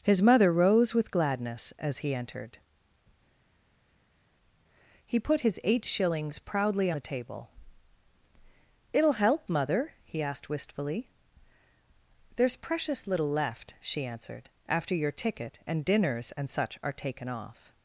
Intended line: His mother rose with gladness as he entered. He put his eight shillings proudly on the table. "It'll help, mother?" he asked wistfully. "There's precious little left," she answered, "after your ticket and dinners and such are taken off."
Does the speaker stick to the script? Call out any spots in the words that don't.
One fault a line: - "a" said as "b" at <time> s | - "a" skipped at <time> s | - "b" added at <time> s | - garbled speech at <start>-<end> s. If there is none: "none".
- "on" skipped at 6.9 s